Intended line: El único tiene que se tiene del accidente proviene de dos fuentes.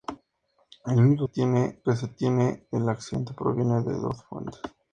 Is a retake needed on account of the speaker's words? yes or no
no